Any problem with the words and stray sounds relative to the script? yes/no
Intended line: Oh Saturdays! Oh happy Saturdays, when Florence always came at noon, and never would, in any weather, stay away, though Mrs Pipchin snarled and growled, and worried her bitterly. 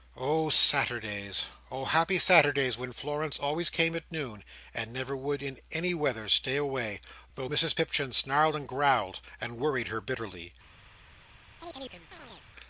yes